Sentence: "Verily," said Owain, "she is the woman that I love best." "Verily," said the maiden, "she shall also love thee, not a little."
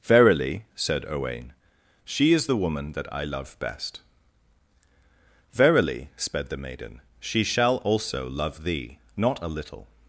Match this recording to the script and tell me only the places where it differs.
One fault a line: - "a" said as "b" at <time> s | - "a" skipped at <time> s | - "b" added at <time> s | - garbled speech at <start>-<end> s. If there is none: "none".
- "said" said as "sped" at 6.2 s